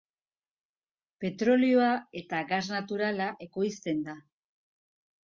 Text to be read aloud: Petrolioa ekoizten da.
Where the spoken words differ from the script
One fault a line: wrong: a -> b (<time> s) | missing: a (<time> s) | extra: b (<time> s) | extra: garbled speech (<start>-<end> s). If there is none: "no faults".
extra: eta gas naturala (2.2 s)